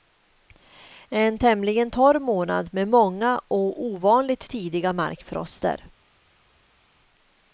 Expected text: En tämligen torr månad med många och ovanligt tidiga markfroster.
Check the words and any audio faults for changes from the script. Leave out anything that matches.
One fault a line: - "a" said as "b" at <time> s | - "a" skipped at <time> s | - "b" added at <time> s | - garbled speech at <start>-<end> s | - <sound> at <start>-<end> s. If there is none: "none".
none